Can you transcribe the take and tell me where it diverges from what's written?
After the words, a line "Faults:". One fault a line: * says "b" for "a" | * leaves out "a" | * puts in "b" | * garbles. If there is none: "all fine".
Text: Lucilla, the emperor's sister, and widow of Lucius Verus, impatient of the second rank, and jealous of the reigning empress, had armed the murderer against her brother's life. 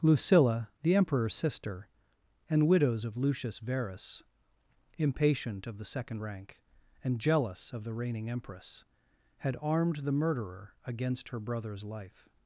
Lucilla, the emperor's sister, and widows of Lucius Verus, impatient of the second rank, and jealous of the reigning empress, had armed the murderer against her brother's life.
Faults:
* says "widows" for "widow"